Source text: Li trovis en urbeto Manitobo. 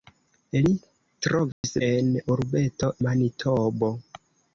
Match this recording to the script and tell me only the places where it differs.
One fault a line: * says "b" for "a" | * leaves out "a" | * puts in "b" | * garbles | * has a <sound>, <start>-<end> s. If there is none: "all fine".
* has a dropout, 1.5-1.6 s